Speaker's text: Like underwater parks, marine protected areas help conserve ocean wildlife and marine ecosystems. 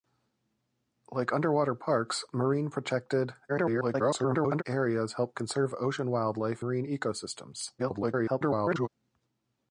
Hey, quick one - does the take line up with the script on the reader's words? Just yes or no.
no